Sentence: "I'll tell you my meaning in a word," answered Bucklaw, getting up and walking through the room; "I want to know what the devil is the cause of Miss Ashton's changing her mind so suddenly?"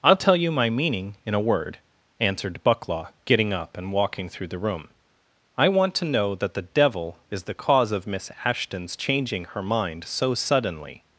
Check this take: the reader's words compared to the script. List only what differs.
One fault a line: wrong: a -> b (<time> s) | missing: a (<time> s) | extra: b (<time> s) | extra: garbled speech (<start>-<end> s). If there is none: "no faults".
wrong: what -> that (6.4 s)